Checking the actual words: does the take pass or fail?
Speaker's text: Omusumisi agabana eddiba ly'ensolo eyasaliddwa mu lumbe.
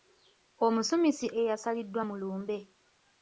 fail